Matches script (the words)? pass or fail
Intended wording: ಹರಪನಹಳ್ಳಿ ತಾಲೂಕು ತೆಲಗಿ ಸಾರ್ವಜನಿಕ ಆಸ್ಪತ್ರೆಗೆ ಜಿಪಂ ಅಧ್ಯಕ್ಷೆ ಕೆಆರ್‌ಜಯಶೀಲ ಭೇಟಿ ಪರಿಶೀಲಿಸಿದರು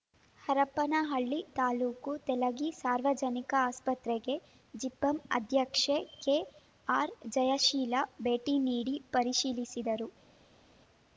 fail